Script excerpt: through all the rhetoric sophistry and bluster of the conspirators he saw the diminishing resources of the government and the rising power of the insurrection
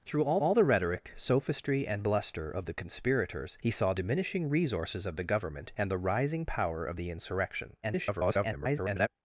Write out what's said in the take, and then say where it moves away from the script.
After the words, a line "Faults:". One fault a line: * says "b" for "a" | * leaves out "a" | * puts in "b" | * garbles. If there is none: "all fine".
through all all the rhetoric sophistry and bluster of the conspirators he saw diminishing resources of the government and the rising power of the insurrection [garbled]
Faults:
* puts in "all"
* leaves out "the"
* garbles